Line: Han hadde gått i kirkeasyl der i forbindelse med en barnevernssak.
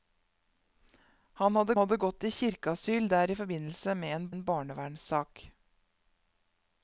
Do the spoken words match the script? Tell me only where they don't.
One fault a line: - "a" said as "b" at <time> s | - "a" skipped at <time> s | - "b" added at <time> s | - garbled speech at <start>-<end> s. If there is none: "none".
- "hadde" added at 1.8 s
- "en" added at 4.3 s